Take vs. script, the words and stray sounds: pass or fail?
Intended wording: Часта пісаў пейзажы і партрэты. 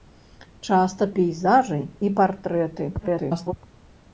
fail